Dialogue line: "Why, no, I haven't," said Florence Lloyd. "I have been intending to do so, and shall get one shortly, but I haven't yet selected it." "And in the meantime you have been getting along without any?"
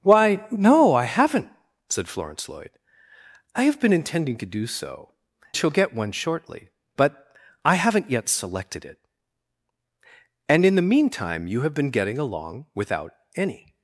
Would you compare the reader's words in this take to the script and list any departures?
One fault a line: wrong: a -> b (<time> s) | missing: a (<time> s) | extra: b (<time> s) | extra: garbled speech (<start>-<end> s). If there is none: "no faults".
missing: and (5.1 s)